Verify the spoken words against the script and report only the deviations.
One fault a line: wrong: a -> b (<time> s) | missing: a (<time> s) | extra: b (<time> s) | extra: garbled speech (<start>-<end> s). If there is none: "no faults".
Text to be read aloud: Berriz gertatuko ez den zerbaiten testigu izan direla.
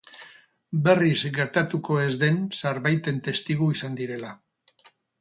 no faults